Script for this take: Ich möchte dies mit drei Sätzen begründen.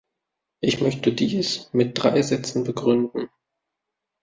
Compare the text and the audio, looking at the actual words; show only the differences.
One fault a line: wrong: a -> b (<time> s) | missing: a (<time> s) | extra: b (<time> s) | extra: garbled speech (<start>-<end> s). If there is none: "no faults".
no faults